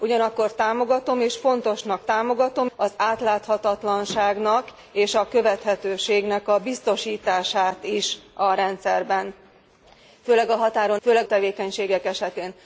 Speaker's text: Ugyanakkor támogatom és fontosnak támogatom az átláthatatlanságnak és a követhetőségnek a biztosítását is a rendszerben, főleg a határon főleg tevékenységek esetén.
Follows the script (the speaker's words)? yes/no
yes